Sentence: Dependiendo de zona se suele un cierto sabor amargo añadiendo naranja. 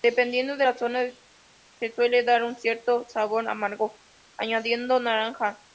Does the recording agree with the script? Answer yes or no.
no